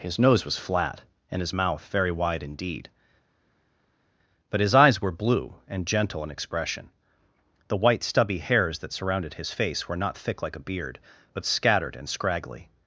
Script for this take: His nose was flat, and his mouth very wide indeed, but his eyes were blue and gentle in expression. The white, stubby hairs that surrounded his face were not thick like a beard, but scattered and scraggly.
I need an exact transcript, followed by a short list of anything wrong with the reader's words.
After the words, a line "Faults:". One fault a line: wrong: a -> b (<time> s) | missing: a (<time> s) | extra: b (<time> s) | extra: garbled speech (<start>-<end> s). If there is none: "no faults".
His nose was flat, and his mouth very wide indeed, but his eyes were blue and gentle in expression. The white, stubby hairs that surrounded his face were not thick like a beard, but scattered and scraggly.
Faults:
no faults